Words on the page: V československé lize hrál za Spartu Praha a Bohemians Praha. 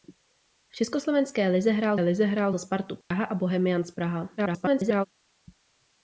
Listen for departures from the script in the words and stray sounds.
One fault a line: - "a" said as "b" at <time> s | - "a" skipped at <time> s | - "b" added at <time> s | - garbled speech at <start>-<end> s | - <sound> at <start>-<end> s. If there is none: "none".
- "lize hrál" added at 2.0 s
- dropout at 3.0-3.1 s
- garbled speech at 4.4-5.1 s